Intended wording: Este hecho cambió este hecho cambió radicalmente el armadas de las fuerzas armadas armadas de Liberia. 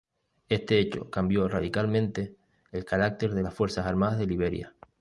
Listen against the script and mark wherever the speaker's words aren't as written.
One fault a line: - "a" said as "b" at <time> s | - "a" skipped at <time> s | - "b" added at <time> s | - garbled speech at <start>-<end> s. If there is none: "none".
- "este hecho cambió" skipped at 1.5 s
- "armadas" said as "carácter" at 2.9 s
- "armadas" skipped at 4.2 s